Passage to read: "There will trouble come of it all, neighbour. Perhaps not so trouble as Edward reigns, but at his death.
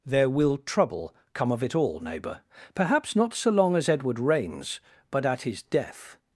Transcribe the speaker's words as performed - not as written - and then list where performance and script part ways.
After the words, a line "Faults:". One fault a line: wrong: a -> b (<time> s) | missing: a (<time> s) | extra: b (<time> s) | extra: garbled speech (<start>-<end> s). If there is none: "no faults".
"There will trouble come of it all, neighbour. Perhaps not so long as Edward reigns, but at his death.
Faults:
wrong: trouble -> long (3.5 s)